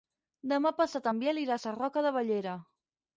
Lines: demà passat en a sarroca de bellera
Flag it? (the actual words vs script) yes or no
yes